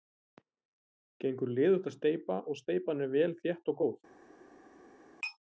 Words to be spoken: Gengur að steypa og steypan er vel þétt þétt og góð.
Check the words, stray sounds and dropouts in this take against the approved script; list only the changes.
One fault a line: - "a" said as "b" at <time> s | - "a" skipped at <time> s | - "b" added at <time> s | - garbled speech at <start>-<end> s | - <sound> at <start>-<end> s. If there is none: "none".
- "liðugt" added at 1.6 s
- "þétt" skipped at 3.8 s